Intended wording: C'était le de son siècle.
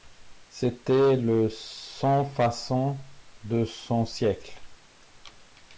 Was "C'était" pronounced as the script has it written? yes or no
yes